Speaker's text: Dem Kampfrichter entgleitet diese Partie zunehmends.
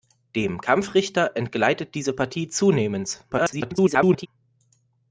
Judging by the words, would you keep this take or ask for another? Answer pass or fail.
fail